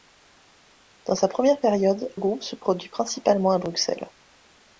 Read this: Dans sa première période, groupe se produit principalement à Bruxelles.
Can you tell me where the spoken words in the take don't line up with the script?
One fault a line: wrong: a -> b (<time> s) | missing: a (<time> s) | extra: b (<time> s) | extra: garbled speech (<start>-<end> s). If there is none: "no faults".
no faults